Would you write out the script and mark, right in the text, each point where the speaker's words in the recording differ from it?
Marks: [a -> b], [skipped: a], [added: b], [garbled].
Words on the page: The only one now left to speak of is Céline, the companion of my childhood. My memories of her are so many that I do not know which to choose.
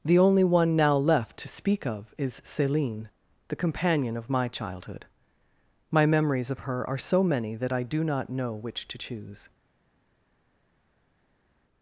The only one now left to speak of is Céline, the companion of my childhood. My memories of her are so many that I do not know which to choose.